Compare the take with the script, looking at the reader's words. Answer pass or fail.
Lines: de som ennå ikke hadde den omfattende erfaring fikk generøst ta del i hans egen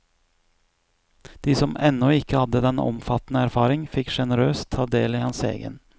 pass